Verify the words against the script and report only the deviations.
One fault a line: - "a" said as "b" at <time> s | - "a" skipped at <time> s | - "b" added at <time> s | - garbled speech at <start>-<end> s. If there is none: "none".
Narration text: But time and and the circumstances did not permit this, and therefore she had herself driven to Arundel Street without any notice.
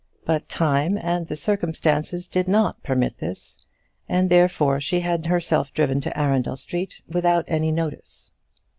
- "and" skipped at 1.3 s